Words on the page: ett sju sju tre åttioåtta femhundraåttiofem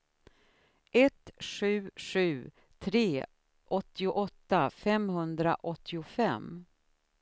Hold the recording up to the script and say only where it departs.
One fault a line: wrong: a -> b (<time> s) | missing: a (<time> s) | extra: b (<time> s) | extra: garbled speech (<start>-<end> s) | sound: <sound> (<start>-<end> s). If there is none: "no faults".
no faults